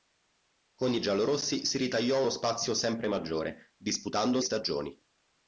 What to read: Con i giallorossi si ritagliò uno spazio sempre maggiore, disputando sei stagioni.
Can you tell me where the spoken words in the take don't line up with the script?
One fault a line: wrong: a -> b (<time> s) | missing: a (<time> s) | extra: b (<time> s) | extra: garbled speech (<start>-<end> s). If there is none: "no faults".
missing: sei (4.4 s)